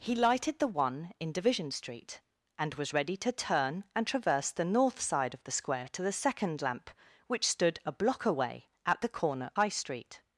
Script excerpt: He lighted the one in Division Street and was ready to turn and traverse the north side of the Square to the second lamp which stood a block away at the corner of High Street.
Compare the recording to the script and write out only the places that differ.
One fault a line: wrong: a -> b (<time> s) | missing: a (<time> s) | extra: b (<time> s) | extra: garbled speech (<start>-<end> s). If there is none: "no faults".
missing: of (9.5 s)